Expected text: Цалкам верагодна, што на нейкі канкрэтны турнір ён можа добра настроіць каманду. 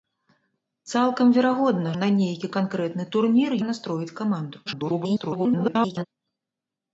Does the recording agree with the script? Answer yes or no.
no